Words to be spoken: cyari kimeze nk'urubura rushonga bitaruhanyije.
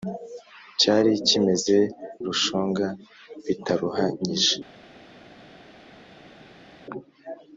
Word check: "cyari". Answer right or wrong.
right